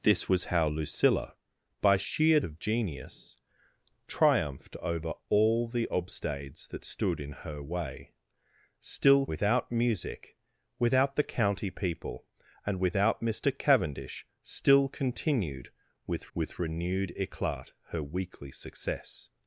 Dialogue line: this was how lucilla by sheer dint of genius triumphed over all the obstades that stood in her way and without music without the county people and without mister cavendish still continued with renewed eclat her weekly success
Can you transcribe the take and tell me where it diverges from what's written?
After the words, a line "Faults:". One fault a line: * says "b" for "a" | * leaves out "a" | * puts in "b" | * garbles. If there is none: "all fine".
this was how lucilla by sheer of genius triumphed over all the obstades that stood in her way still without music without the county people and without mister cavendish still continued with with renewed eclat her weekly success
Faults:
* leaves out "dint"
* says "still" for "and"
* puts in "with"